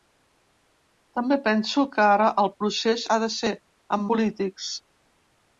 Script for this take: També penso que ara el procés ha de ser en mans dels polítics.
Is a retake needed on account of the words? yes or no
yes